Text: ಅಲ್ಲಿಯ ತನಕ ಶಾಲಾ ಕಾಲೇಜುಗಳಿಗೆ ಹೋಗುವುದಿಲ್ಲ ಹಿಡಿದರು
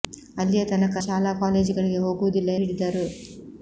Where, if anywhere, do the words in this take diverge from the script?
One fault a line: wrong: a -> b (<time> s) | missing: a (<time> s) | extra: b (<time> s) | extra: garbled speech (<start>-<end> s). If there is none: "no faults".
no faults